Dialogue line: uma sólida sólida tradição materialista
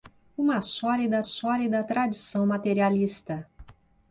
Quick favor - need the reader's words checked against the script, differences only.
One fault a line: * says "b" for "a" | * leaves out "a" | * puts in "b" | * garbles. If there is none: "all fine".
all fine